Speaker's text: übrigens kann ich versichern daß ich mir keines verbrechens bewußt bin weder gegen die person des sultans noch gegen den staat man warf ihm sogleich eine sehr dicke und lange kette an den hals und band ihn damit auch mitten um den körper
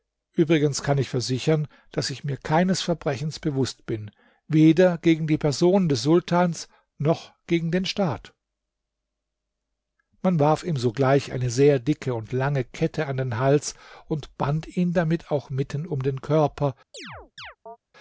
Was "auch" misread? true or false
false